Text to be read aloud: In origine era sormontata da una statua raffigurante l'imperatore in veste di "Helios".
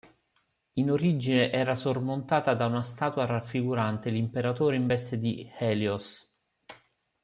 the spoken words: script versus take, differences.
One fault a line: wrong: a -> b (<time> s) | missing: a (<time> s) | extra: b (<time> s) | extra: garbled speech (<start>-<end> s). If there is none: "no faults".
no faults